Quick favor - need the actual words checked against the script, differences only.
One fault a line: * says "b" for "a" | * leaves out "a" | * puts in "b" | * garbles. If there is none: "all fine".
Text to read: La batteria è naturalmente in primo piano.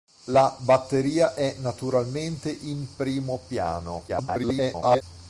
* garbles